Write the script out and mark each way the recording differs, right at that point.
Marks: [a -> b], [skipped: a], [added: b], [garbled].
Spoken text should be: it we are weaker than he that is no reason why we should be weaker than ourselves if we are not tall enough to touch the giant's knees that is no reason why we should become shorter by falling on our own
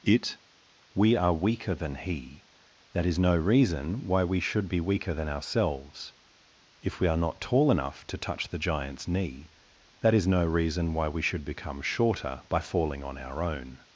it we are weaker than he that is no reason why we should be weaker than ourselves if we are not tall enough to touch the giant's [knees -> knee] that is no reason why we should become shorter by falling on our own